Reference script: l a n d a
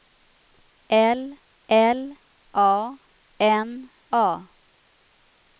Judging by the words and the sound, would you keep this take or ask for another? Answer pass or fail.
fail